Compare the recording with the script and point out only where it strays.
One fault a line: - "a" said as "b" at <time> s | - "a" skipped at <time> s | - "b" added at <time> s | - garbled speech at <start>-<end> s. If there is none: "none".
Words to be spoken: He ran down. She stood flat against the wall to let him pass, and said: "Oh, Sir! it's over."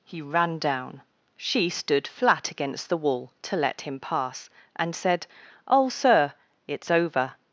none